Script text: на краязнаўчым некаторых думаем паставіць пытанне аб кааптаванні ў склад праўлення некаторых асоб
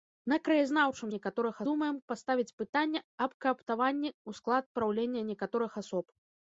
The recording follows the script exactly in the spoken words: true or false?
true